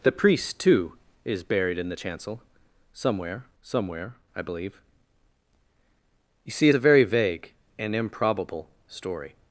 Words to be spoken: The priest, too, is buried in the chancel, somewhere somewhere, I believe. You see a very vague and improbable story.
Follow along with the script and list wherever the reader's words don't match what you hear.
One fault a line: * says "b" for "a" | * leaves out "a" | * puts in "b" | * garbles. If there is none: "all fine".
all fine